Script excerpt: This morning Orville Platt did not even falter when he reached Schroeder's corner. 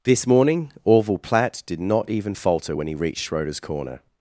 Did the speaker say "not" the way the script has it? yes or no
yes